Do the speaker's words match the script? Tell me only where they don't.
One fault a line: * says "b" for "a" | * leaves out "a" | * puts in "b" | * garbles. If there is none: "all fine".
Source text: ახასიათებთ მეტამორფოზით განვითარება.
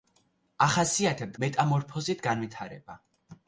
all fine